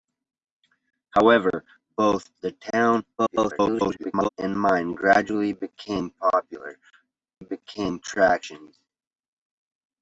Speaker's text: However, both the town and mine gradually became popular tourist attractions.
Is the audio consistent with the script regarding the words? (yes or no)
no